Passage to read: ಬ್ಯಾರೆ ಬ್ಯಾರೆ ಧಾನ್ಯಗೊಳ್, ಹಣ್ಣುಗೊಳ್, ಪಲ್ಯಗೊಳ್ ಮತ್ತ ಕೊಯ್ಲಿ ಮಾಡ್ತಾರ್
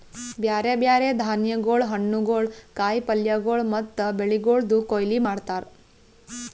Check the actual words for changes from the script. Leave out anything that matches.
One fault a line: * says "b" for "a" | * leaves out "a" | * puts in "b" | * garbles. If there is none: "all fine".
* puts in "ಕಾಯಿ"
* puts in "ಬೆಳಿಗೊಳ್ದು"